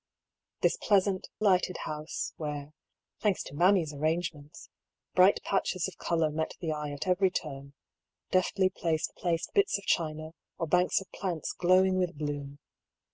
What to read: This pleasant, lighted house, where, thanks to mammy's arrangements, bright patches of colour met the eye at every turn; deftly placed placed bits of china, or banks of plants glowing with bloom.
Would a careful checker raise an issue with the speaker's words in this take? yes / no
no